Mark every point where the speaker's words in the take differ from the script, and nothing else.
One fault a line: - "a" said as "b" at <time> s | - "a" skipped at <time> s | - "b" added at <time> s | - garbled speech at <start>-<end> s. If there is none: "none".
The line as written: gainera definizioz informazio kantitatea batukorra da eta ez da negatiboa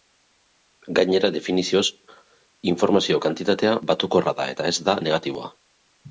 none